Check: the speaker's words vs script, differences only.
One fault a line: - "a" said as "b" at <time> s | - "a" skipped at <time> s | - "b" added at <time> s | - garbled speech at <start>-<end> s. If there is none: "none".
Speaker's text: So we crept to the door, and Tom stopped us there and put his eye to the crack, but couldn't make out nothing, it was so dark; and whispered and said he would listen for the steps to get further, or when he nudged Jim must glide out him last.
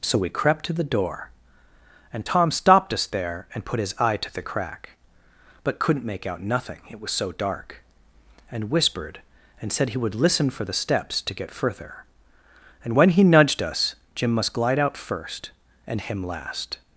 - "or" said as "and" at 12.8 s
- "us" added at 13.6 s
- "first and" added at 15.0 s